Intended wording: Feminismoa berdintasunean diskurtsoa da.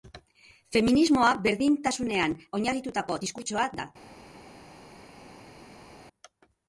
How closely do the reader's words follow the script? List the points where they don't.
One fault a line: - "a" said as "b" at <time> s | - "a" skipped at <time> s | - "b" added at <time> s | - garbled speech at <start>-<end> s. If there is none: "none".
- "oinarritutako" added at 2.6 s